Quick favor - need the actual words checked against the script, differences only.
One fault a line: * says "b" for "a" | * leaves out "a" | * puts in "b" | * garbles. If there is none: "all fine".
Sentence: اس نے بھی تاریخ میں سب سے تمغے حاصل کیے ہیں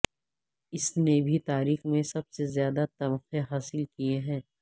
* puts in "زیادہ"